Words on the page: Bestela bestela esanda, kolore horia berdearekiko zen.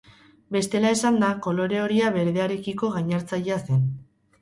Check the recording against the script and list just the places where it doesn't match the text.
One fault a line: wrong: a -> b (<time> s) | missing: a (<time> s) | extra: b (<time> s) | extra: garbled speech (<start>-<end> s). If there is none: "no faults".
missing: bestela (0.9 s)
extra: gainartzailea (3.0 s)